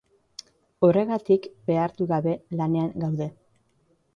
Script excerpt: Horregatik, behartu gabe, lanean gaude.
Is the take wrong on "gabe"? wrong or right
right